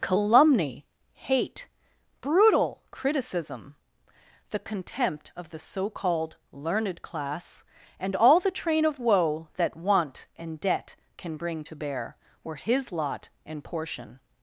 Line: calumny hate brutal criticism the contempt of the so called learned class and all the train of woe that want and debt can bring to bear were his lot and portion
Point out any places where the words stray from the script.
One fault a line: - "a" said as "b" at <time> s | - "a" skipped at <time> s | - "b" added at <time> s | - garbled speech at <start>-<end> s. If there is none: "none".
none